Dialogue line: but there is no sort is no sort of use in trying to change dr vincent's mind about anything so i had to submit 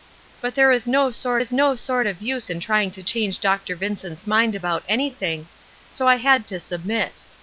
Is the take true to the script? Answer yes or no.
yes